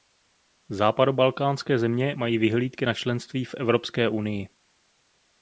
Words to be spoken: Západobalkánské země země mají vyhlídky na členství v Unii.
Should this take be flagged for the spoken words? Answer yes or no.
yes